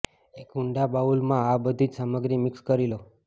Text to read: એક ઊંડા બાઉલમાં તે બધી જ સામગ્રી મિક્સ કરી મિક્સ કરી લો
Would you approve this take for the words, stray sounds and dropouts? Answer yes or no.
no